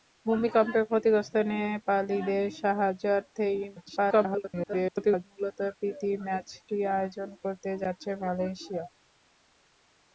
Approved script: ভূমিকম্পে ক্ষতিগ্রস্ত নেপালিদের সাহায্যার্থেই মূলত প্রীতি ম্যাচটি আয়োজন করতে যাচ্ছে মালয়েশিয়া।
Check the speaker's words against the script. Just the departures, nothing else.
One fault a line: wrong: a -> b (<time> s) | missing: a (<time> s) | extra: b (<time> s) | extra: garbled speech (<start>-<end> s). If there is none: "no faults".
extra: garbled speech (3.8-5.2 s)